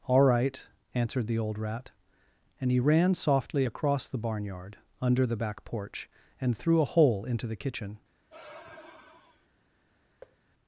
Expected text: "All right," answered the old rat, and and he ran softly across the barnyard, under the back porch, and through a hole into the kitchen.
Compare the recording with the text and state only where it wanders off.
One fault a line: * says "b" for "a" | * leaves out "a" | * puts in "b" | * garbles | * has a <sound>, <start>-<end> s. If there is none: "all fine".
* leaves out "and"
* has a sigh, 8.3-9.5 s
* has a thud, 10.2-10.4 s